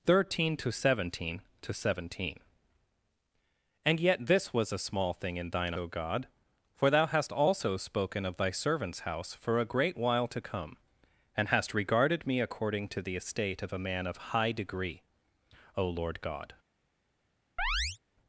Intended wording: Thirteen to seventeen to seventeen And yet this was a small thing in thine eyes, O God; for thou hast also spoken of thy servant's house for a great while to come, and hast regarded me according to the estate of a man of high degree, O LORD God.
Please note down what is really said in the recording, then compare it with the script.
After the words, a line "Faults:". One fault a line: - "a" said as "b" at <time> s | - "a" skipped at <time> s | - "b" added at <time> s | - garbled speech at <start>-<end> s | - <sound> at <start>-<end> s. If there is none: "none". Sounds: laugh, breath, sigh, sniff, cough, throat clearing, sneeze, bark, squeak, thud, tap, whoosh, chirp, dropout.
Thirteen to seventeen to seventeen And yet this was a small thing in thine O God; for thou hast also spoken of thy servant's house for a great while to come, and hast regarded me according to the estate of a man of high degree, O LORD God.
Faults:
- "eyes" skipped at 5.8 s
- chirp at 17.6-18.0 s